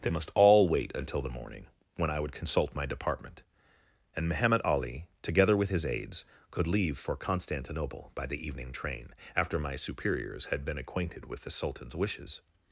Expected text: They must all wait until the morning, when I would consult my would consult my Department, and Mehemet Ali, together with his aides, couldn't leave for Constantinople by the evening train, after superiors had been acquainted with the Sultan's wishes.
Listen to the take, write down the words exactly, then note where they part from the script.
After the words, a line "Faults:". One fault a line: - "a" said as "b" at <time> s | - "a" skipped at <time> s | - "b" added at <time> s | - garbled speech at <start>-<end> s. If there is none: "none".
They must all wait until the morning, when I would consult my Department, and Mehemet Ali, together with his aides, could leave for Constantinople by the evening train, after my superiors had been acquainted with the Sultan's wishes.
Faults:
- "would consult my" skipped at 2.9 s
- "couldn't" said as "could" at 6.5 s
- "my" added at 9.6 s